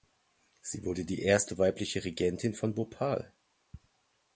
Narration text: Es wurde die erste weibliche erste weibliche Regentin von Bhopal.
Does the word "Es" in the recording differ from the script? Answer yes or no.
yes